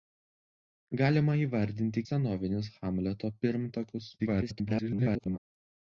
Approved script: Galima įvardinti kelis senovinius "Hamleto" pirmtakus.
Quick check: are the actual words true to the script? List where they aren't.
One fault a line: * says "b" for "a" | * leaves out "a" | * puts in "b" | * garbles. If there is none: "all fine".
* leaves out "kelis"
* garbles